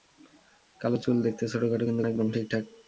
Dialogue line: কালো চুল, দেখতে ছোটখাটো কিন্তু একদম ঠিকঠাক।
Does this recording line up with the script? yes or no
yes